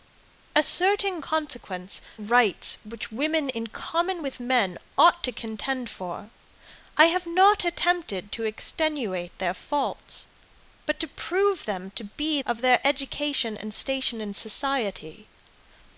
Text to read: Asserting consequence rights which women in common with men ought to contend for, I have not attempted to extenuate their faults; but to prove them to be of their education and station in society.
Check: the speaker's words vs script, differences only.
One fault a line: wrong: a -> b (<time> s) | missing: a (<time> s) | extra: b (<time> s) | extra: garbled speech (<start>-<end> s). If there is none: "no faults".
no faults